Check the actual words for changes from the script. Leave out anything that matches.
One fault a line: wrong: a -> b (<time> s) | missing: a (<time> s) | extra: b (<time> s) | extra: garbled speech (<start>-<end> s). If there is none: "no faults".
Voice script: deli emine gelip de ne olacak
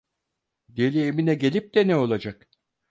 no faults